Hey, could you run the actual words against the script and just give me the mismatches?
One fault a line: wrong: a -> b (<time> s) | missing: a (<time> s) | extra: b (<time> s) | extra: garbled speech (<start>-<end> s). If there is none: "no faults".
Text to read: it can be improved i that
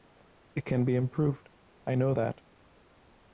extra: know (1.9 s)